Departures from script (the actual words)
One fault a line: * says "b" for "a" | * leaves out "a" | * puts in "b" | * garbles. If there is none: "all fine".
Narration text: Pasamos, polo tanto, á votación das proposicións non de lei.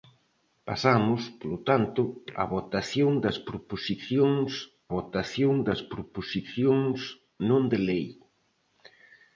* puts in "votación das proposicións"